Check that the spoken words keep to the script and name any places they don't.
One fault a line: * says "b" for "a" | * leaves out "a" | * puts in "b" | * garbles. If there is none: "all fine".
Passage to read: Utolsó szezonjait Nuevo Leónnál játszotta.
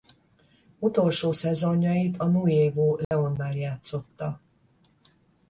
* puts in "a"